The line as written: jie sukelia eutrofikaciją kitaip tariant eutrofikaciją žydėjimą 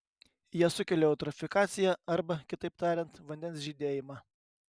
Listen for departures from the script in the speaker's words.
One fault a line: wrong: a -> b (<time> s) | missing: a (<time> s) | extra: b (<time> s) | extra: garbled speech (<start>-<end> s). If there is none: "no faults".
extra: arba (2.1 s)
wrong: eutrofikaciją -> vandens (3.3 s)